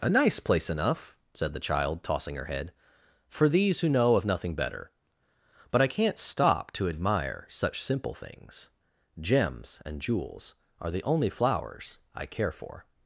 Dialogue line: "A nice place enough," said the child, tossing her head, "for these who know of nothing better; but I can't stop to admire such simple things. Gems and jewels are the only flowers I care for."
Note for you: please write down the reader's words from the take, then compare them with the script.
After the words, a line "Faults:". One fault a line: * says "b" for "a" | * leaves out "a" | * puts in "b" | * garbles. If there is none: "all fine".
"A nice place enough," said the child, tossing her head, "for these who know of nothing better; but I can't stop to admire such simple things. Gems and jewels are the only flowers I care for."
Faults:
all fine